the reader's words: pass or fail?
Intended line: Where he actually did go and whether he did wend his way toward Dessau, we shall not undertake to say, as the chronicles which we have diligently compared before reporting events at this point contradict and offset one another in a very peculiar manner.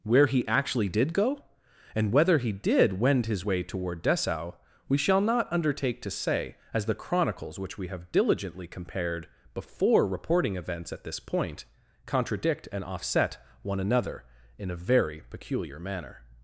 pass